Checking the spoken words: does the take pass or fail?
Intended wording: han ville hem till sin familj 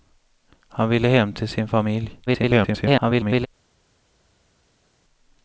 fail